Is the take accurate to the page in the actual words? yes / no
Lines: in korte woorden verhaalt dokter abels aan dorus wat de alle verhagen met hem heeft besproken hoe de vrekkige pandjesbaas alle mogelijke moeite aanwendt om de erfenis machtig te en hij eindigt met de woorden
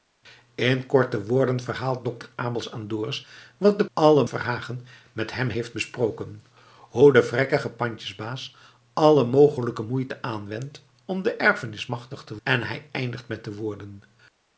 yes